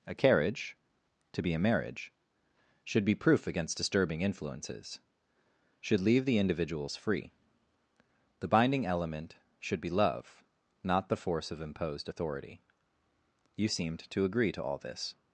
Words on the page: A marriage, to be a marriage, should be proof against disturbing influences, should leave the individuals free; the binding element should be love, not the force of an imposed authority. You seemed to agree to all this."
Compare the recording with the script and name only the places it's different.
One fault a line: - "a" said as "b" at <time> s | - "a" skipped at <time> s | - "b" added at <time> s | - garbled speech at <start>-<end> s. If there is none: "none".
- "marriage" said as "carriage" at 0.1 s
- "an" skipped at 11.6 s